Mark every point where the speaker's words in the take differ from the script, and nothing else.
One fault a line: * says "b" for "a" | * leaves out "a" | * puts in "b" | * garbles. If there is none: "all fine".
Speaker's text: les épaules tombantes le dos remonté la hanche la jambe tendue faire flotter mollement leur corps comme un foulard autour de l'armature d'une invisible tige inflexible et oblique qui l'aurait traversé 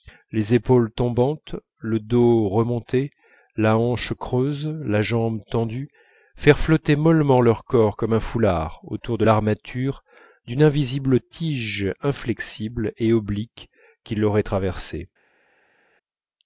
* puts in "creuse"